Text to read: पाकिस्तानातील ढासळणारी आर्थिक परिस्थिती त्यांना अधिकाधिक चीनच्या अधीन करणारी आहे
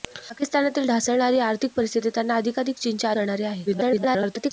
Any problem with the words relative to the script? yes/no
yes